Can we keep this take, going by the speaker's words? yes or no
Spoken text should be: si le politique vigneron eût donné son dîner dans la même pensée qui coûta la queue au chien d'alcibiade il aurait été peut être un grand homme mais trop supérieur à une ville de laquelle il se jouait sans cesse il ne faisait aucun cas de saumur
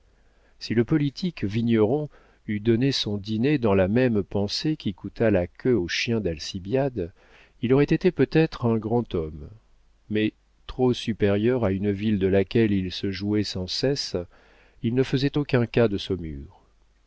yes